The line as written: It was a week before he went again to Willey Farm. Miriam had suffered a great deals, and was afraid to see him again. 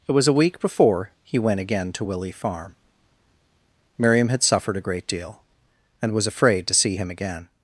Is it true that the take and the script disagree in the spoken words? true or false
true